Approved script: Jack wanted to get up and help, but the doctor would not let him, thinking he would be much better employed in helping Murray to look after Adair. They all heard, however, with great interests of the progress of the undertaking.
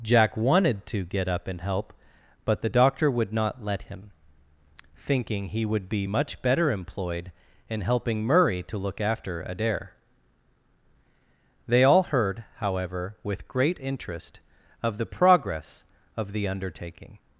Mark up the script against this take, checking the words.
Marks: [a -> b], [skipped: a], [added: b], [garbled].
Jack wanted to get up and help, but the doctor would not let him, thinking he would be much better employed in helping Murray to look after Adair. They all heard, however, with great [interests -> interest] of the progress of the undertaking.